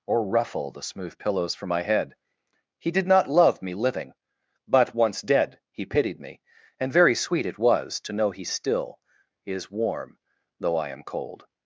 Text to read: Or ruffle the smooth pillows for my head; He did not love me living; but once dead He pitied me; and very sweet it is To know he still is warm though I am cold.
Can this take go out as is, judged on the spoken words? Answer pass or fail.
fail